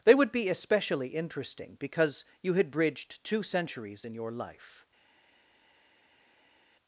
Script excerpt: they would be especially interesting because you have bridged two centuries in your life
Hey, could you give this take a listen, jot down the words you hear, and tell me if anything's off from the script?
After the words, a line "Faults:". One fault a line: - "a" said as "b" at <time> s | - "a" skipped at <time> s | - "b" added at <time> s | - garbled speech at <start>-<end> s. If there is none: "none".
they would be especially interesting because you had bridged two centuries in your life
Faults:
- "have" said as "had" at 2.5 s